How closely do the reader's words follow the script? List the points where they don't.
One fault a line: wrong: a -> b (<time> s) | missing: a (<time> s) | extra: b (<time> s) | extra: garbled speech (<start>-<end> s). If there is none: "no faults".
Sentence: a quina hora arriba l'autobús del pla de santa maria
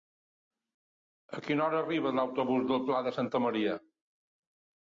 no faults